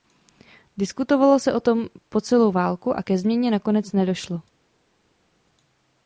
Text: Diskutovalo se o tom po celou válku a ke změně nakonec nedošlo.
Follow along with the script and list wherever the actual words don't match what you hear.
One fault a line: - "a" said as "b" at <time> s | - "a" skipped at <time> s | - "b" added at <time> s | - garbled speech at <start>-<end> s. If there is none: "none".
none